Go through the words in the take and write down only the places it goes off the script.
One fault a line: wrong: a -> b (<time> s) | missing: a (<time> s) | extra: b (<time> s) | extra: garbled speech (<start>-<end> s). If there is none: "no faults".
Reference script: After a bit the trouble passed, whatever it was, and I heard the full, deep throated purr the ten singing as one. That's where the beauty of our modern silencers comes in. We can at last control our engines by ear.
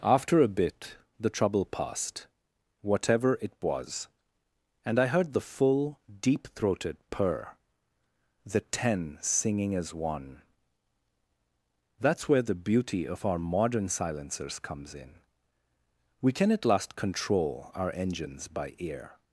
no faults